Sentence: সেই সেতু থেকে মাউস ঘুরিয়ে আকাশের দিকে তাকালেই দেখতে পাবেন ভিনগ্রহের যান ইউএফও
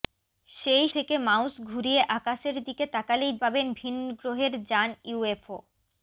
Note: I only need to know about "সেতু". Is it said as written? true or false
false